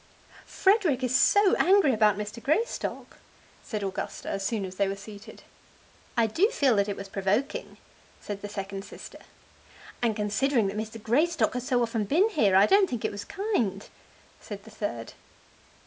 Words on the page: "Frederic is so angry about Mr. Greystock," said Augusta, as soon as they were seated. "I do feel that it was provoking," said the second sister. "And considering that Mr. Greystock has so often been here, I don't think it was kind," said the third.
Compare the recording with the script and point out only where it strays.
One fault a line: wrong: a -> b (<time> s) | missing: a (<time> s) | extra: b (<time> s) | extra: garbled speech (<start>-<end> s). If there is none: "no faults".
no faults